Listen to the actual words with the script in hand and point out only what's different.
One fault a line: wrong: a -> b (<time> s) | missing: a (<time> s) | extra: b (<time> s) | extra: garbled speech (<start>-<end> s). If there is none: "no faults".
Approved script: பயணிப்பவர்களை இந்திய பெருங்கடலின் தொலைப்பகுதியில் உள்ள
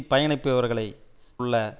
missing: இந்திய பெருங்கடலின் தொலைப்பகுதியில் (0.9 s)